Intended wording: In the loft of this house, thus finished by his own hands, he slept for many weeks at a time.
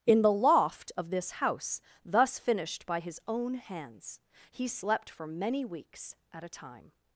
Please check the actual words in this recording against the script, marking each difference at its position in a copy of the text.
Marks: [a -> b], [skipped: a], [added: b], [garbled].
In the loft of this house, thus finished by his own hands, he slept for many weeks at a time.